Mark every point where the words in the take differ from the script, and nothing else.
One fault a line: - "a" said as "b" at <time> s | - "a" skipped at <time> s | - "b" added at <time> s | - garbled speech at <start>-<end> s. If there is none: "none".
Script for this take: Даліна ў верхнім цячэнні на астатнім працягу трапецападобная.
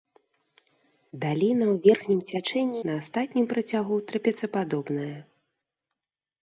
none